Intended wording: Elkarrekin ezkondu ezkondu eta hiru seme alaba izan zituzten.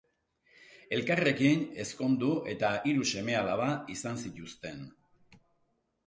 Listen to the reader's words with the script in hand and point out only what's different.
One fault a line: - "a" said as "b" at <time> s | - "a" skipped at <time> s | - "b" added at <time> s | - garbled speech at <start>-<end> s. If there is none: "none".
- "ezkondu" skipped at 2.3 s